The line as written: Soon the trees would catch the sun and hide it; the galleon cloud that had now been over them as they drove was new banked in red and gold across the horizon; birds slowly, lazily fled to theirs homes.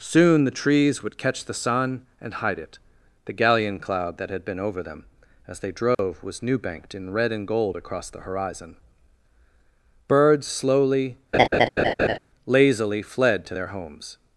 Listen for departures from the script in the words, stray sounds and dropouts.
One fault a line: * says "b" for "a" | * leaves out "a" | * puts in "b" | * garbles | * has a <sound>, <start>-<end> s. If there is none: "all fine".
* leaves out "now"
* has a dropout, 5.9-6.0 s
* has a laugh, 11.3-12.2 s
* says "their" for "theirs"